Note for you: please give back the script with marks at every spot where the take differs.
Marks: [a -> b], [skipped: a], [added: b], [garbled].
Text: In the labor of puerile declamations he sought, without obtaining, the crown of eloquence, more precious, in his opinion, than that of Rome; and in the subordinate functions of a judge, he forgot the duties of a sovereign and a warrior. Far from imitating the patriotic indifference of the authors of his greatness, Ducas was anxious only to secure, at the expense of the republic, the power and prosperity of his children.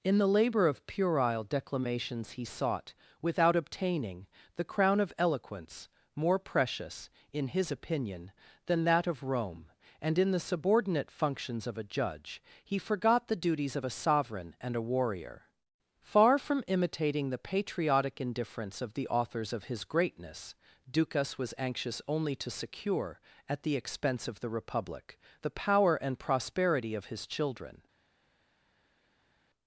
In the labor of puerile declamations he sought, without obtaining, the crown of eloquence, more precious, in his opinion, than that of Rome; and in the subordinate functions of a judge, he forgot the duties of a sovereign and a warrior. Far from imitating the patriotic indifference of the authors of his greatness, Ducas was anxious only to secure, at the expense of the republic, the power and prosperity of his children.